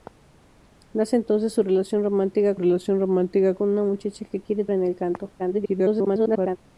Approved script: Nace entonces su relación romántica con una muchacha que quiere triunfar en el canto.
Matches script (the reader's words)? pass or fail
fail